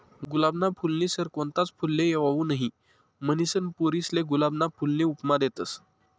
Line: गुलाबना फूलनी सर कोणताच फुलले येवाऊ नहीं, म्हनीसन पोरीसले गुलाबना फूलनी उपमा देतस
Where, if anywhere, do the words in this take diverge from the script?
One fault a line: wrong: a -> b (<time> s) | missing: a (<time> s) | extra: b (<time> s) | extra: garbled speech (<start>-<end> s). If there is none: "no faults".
no faults